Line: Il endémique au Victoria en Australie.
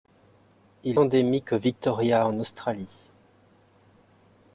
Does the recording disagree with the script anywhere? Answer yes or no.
no